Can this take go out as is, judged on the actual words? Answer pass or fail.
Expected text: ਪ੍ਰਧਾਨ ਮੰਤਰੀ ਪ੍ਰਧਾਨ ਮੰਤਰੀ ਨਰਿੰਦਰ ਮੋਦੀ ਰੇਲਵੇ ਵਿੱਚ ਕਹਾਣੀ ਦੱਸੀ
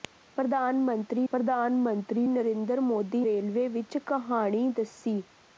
pass